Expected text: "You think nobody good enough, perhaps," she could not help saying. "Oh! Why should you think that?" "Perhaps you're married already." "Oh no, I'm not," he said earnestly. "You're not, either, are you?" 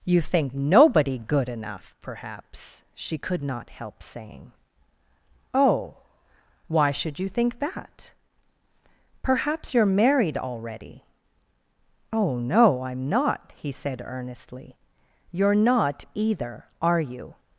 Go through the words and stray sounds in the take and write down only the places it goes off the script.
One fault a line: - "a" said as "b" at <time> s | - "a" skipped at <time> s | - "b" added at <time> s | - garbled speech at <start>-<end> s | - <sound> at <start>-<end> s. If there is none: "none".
none